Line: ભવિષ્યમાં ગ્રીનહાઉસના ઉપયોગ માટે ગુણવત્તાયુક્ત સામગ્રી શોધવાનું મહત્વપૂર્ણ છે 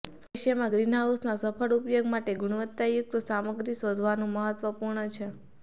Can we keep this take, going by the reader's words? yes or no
no